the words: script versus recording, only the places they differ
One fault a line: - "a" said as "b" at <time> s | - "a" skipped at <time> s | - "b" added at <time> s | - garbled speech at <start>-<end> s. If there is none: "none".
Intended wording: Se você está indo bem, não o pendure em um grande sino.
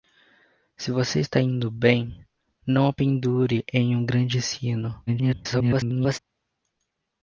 - garbled speech at 5.1-6.2 s